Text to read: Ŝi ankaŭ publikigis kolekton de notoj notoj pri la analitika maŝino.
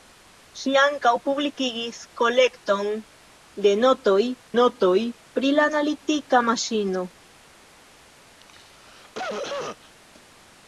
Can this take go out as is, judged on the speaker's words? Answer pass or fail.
pass